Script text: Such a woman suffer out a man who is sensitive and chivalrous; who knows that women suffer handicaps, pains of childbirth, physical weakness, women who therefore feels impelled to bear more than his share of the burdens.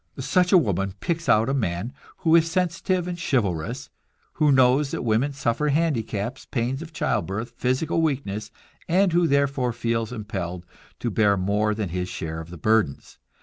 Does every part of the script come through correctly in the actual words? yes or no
no